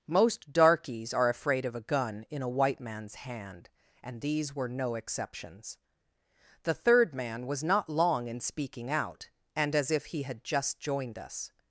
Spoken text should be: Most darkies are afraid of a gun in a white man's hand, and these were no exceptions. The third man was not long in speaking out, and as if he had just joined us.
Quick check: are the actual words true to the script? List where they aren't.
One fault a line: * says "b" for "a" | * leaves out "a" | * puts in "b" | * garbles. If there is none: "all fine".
all fine